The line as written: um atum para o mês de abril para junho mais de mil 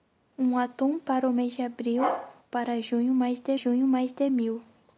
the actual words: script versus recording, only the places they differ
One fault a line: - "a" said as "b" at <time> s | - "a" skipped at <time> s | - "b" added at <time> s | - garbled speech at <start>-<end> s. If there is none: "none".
- "junho mais de" added at 3.5 s